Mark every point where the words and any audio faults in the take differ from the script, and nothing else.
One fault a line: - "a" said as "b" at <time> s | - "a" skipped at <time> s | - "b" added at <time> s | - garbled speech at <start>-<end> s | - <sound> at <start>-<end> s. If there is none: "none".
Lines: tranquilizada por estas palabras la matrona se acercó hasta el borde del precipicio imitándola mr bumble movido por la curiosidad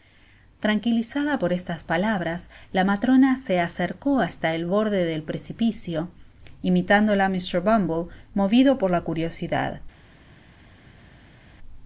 none